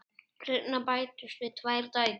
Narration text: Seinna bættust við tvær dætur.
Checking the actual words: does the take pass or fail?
pass